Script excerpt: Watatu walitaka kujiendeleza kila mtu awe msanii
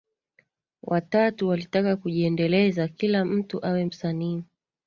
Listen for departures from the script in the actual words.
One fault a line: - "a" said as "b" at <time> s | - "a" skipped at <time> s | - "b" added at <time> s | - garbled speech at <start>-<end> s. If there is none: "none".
none